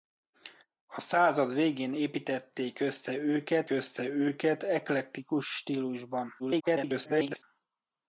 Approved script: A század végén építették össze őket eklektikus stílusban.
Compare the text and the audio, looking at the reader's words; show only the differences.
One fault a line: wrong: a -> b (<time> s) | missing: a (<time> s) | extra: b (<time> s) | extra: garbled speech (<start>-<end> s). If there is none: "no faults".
extra: össze őket (3.7 s)
extra: garbled speech (6.4-7.4 s)